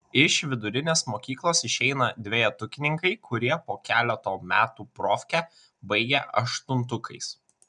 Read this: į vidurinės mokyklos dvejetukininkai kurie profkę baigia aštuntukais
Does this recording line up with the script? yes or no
no